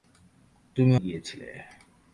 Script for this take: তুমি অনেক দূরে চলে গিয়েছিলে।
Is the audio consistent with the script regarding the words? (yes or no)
no